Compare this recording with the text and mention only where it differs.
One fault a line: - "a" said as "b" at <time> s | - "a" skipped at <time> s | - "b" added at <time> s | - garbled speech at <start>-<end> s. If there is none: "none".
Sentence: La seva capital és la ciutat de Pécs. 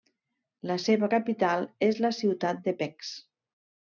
none